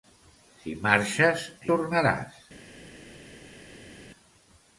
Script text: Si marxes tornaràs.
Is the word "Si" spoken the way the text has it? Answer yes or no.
yes